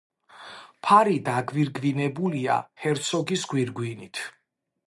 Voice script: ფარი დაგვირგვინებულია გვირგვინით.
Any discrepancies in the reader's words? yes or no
yes